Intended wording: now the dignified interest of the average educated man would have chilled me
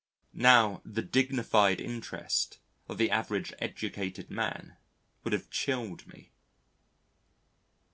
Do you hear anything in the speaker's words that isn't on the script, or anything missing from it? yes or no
no